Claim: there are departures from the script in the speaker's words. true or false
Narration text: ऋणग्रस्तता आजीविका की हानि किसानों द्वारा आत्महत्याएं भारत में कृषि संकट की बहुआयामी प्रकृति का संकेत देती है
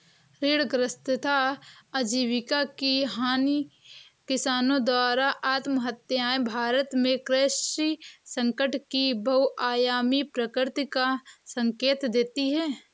false